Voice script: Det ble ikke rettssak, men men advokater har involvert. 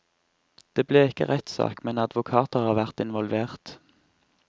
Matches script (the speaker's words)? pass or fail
fail